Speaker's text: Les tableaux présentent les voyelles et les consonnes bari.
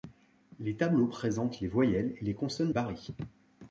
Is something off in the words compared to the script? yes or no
no